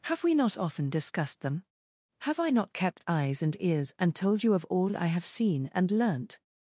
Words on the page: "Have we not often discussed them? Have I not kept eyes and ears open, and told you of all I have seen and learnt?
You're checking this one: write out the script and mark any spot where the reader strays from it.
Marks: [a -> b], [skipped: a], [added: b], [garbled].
"Have we not often discussed them? Have I not kept eyes and ears [skipped: open,] and told you of all I have seen and learnt?